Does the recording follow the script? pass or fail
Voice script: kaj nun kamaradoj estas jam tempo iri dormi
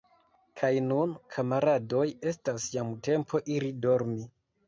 pass